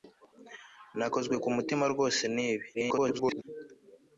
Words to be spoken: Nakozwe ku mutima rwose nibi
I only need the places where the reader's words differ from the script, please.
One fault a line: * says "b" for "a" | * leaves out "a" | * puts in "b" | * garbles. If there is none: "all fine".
* garbles